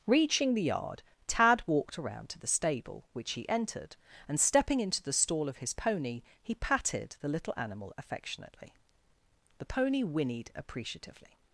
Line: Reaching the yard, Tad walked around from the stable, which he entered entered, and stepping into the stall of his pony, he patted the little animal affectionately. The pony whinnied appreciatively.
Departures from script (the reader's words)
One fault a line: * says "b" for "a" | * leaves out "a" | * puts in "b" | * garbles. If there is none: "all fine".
* says "to" for "from"
* leaves out "entered"